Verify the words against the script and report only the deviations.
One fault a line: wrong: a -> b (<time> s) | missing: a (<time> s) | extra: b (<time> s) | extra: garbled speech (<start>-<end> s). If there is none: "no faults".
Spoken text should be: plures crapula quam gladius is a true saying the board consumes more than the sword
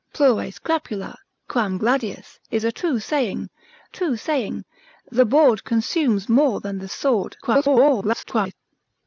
extra: true saying (3.9 s)
extra: garbled speech (7.4-8.5 s)